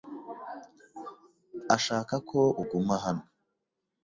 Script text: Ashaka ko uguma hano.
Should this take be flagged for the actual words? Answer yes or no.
no